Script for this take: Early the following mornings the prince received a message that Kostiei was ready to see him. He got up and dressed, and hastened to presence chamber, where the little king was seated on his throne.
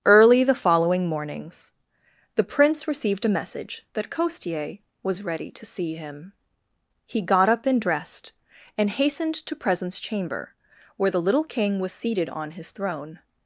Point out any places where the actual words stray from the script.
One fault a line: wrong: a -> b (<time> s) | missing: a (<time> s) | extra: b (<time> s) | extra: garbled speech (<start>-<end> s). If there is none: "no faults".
no faults